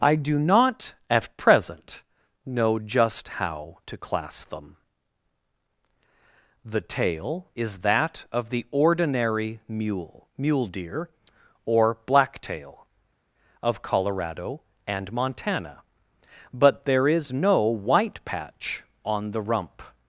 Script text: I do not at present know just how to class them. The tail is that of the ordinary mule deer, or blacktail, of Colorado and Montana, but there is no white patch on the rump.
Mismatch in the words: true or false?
true